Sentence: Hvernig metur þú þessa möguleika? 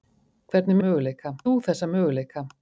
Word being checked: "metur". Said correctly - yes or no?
no